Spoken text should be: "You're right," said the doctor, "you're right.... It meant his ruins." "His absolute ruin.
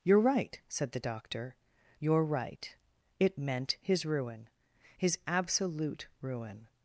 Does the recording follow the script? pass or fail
fail